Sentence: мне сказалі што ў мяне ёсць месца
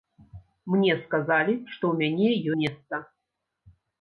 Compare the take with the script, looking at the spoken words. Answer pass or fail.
fail